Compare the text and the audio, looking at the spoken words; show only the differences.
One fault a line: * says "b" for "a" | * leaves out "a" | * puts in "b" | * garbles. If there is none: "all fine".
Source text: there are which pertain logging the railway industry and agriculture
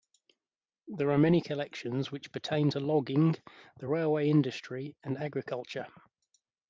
* puts in "many collections"
* puts in "to"